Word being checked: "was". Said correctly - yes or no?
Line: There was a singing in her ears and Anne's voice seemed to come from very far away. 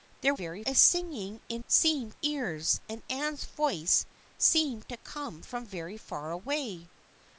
no